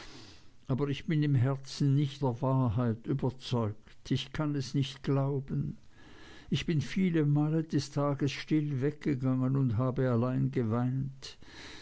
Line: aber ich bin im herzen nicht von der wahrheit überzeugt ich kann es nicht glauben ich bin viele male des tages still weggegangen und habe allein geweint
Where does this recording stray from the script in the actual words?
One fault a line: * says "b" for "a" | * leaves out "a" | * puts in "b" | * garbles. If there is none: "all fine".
* leaves out "von"